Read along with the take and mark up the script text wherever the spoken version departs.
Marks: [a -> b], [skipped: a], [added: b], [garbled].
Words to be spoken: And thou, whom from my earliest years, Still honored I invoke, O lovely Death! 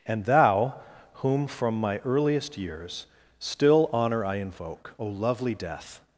And thou, whom from my earliest years, Still [honored -> honor] I invoke, O lovely Death!